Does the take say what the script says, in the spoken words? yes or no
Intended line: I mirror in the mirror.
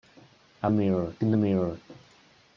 yes